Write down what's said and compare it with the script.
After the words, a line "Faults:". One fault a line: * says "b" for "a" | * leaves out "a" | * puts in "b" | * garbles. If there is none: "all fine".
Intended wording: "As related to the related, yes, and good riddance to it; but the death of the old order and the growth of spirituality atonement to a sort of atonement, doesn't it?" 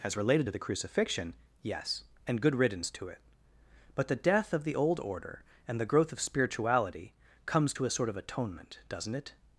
"As related to the crucifixion, yes, and good riddance to it; but the death of the old order and the growth of spirituality comes to a sort of atonement, doesn't it?"
Faults:
* says "crucifixion" for "related"
* says "comes" for "atonement"